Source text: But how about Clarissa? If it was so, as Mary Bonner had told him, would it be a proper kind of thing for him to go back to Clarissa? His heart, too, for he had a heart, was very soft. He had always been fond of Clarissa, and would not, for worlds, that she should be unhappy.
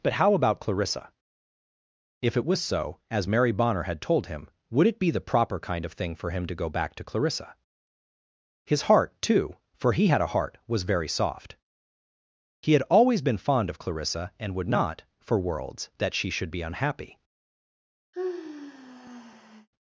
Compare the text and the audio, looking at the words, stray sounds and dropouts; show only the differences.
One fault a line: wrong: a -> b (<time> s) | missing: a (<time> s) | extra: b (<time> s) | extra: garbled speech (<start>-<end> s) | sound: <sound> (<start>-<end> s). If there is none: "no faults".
wrong: a -> the (5.1 s)
sound: sigh (18.1-19.7 s)